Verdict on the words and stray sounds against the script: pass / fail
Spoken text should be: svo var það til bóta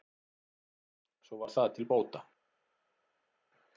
pass